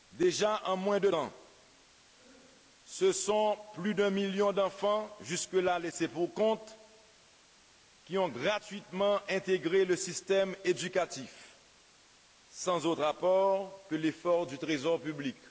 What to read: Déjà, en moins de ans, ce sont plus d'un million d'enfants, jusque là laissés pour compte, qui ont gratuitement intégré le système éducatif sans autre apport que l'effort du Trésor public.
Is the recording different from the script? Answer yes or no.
no